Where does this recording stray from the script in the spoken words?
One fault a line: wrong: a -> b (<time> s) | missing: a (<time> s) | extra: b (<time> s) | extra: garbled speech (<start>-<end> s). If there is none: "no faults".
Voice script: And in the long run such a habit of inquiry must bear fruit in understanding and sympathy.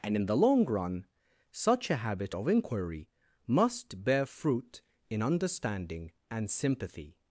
no faults